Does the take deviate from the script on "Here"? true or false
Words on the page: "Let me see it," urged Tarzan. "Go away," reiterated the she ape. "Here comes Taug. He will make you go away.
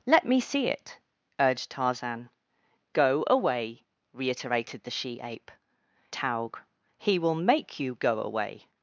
true